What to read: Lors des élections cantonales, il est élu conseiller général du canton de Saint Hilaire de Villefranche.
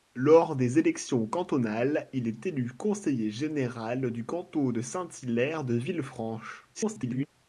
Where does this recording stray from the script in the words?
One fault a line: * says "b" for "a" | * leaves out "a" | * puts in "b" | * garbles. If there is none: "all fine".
* garbles